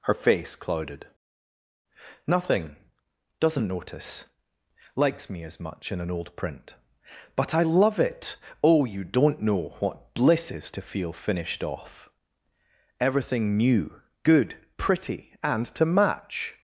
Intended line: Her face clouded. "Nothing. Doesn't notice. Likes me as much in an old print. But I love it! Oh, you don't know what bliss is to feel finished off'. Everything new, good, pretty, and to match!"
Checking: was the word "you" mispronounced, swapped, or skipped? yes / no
no